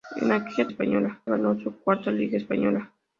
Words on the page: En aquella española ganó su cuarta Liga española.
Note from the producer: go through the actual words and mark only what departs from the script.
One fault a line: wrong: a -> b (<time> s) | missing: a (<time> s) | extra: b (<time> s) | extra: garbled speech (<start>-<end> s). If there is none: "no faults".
no faults